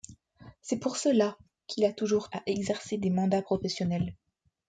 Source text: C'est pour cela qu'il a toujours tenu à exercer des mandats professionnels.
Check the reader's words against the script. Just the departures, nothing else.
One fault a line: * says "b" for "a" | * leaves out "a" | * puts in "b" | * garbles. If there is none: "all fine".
* leaves out "tenu"